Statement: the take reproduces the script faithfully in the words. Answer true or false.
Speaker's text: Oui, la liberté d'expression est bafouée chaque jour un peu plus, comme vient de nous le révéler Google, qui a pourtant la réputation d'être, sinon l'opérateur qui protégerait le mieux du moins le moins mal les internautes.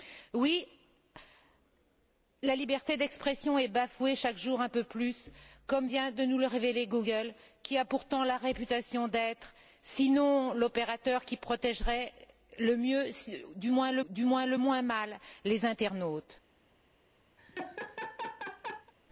false